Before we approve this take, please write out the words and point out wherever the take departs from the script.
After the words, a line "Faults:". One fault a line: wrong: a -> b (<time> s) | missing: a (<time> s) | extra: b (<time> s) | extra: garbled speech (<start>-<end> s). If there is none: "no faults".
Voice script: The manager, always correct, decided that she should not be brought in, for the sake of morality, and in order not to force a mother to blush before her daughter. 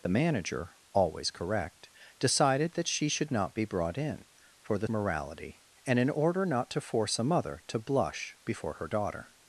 The manager, always correct, decided that she should not be brought in, for the morality, and in order not to force a mother to blush before her daughter.
Faults:
missing: sake of (4.9 s)